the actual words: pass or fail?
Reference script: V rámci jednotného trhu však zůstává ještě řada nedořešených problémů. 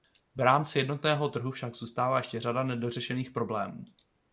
pass